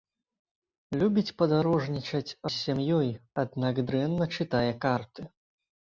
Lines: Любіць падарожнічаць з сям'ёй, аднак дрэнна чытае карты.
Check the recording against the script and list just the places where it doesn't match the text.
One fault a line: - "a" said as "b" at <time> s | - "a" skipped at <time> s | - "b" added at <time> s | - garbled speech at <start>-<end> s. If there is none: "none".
none